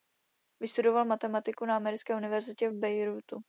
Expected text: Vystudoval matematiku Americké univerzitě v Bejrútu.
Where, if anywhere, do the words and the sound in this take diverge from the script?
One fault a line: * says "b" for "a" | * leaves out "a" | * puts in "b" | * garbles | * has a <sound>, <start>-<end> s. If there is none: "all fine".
* puts in "na"